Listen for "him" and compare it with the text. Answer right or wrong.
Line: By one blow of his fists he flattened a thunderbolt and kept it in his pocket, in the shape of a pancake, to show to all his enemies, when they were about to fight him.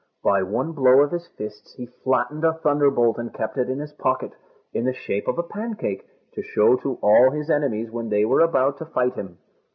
right